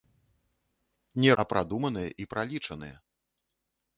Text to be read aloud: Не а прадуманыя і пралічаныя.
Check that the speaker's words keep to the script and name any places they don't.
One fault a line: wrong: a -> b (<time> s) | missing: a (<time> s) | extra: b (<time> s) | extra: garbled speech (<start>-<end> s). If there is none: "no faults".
no faults